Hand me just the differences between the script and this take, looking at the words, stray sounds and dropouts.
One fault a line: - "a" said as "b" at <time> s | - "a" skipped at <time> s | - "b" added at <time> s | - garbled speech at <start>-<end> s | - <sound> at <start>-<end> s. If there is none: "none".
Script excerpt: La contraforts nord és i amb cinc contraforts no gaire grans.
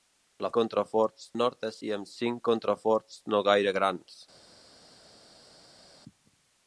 none